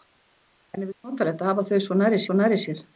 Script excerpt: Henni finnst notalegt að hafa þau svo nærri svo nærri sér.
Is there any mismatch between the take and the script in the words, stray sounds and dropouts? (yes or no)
no